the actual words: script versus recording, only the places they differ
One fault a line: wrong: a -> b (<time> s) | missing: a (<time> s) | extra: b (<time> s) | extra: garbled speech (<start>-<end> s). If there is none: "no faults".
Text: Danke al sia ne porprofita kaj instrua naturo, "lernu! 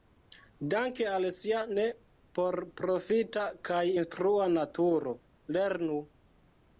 no faults